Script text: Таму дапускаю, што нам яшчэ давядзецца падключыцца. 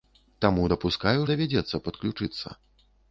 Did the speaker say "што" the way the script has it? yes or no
no